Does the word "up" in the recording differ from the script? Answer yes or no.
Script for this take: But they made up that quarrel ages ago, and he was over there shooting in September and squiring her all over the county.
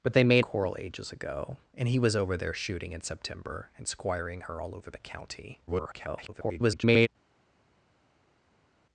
yes